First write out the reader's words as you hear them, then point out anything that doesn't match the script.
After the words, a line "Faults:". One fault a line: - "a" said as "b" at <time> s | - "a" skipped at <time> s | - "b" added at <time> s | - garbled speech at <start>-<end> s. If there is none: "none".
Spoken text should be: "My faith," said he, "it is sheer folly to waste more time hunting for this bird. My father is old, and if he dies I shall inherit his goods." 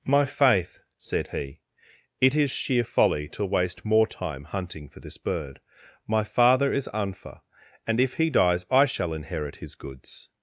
"My faith," said he, "it is sheer folly to waste more time hunting for this bird. My father is unfa, and if he dies I shall inherit his goods."
Faults:
- "old" said as "unfa" at 6.9 s